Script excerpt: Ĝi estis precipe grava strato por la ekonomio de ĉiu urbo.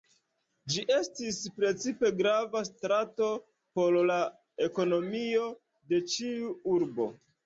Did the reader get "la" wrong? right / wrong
right